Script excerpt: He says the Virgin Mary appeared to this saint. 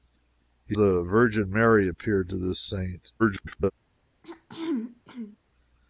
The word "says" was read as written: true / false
false